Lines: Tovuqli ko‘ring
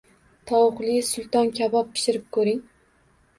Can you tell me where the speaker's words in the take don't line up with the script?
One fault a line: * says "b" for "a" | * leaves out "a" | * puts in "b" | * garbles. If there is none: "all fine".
* puts in "sulton kabob pishirib"